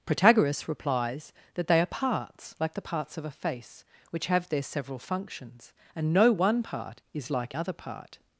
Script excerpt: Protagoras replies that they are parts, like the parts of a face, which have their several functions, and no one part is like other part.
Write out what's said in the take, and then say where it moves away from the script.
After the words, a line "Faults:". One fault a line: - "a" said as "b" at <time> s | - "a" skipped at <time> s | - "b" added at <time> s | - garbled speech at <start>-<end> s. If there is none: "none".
Protagoras replies that they are parts, like the parts of a face, which have their several functions, and no one part is like other part.
Faults:
none